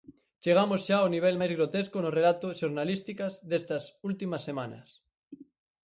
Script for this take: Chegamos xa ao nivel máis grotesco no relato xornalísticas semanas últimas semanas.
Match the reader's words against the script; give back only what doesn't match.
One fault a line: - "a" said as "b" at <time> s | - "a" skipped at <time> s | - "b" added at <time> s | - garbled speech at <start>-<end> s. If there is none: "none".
- "semanas" said as "destas" at 3.5 s